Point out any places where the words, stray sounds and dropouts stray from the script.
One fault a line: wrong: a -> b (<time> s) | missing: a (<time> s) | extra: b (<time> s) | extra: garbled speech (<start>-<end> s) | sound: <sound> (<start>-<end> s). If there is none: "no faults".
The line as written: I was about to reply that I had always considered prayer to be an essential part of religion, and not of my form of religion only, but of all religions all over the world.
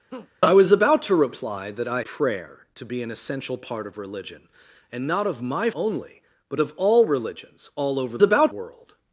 sound: laugh (0.1-0.3 s)
missing: had always considered (2.0 s)
missing: form of religion (5.7 s)
wrong: the -> about (8.2 s)